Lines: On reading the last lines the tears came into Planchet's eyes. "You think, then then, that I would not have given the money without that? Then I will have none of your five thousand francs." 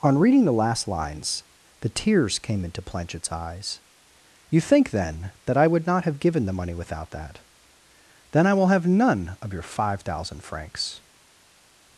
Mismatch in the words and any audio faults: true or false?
true